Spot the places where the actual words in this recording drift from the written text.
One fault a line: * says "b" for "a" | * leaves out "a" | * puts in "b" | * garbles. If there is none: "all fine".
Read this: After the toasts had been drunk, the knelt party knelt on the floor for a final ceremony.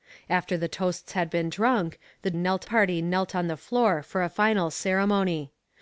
all fine